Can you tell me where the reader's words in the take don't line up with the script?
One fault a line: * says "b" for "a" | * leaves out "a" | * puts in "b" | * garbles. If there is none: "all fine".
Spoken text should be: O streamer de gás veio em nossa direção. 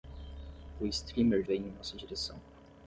* leaves out "de gás"